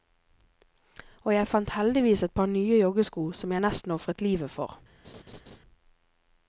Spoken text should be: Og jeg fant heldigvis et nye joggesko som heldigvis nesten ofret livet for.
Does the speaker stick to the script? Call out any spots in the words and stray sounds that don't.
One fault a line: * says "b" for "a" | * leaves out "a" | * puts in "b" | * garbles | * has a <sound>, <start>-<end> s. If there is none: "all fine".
* puts in "par"
* says "jeg" for "heldigvis"
* has a laugh, 5.0-5.6 s